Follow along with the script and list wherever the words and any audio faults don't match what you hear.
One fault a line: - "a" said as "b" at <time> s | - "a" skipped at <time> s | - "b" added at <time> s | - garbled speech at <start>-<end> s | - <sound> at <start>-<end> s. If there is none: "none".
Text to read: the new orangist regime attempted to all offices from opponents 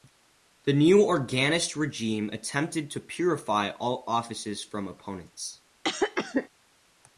- "purify" added at 3.0 s
- cough at 5.8-6.5 s